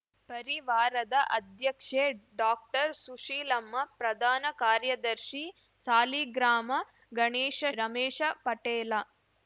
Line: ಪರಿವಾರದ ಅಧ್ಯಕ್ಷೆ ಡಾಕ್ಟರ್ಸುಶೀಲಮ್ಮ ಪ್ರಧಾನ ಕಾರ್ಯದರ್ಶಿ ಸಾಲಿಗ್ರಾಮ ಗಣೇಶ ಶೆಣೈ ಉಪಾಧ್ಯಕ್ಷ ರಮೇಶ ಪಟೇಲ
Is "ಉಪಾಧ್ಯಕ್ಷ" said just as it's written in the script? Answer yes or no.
no